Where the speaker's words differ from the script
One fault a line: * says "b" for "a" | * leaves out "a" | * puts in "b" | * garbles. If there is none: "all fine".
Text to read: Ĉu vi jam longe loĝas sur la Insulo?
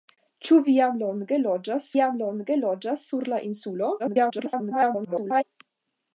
* puts in "jam longe loĝas"
* garbles